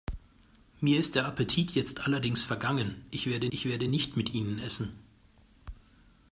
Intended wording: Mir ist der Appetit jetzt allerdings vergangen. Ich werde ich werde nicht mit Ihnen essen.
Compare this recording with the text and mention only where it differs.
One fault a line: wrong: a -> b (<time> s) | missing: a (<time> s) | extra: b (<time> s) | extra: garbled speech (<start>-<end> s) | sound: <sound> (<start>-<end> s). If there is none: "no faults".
no faults